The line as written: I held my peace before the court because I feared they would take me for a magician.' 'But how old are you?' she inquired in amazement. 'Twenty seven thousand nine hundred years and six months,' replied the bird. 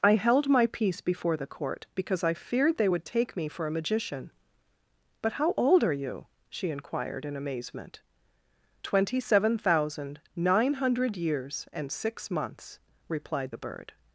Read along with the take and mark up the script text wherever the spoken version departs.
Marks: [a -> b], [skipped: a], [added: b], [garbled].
I held my peace before the court because I feared they would take me for a magician.' 'But how old are you?' she inquired in amazement. 'Twenty seven thousand nine hundred years and six months,' replied the bird.